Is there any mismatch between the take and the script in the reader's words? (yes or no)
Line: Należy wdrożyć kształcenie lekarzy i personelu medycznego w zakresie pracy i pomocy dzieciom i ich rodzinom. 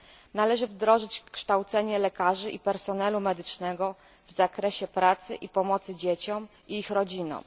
no